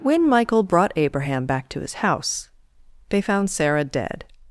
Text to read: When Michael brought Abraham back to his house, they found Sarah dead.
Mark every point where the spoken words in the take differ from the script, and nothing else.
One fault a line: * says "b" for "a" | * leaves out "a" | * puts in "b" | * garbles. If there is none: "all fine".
all fine